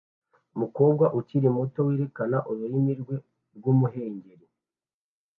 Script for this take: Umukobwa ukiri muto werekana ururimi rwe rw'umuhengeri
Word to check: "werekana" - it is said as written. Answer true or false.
true